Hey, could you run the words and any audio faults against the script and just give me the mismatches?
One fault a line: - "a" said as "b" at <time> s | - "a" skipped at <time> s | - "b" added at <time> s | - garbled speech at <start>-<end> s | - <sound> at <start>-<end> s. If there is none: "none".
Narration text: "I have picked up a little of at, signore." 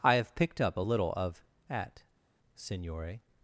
none